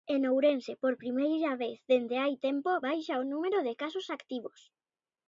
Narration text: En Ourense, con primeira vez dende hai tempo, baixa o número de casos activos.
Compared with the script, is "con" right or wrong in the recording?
wrong